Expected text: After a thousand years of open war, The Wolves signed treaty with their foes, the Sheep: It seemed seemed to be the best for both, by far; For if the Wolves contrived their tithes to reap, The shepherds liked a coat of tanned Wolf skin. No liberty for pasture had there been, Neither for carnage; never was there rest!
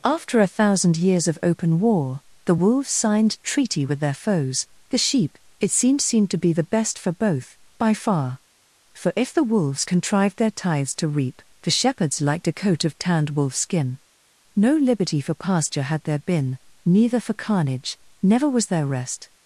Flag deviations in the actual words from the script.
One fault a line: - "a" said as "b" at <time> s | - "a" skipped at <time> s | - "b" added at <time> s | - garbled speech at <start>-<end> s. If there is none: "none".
none